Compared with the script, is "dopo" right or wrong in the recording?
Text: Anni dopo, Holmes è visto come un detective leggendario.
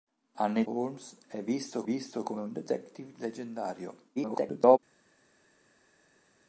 wrong